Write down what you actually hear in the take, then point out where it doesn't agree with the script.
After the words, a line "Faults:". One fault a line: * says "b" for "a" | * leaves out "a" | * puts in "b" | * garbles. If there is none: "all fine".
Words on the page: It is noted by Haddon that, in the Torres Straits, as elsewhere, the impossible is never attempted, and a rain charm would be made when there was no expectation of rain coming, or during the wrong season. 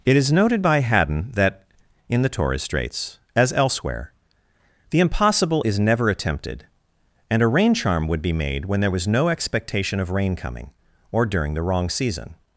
It is noted by Haddon that, in the Torres Straits, as elsewhere, the impossible is never attempted, and a rain charm would be made when there was no expectation of rain coming, or during the wrong season.
Faults:
all fine